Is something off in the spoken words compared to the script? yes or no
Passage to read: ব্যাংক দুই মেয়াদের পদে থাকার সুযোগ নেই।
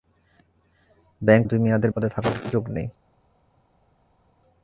no